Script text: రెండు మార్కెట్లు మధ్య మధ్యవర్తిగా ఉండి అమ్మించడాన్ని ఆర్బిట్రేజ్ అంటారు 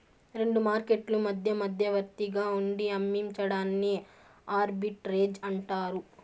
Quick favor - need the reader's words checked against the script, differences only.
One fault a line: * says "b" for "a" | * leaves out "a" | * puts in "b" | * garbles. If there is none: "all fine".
all fine